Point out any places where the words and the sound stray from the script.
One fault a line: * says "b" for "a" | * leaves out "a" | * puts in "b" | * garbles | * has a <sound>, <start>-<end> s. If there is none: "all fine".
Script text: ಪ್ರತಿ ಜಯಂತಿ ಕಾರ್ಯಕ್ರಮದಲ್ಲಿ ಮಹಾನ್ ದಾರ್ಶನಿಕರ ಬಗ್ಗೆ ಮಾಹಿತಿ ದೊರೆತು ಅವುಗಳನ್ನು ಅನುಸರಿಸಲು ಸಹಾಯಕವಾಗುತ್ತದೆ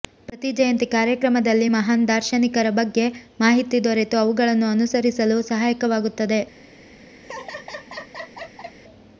* has a laugh, 7.2-8.8 s